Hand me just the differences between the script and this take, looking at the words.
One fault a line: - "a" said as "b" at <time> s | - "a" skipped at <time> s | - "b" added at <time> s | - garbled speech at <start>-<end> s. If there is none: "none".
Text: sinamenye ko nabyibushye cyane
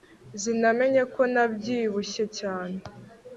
none